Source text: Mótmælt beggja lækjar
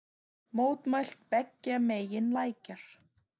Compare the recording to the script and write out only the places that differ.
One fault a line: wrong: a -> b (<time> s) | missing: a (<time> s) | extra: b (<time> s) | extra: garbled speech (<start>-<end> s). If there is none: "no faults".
extra: megin (1.9 s)